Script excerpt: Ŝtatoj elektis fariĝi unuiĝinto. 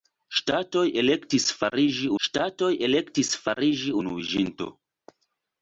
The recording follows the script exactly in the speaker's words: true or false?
false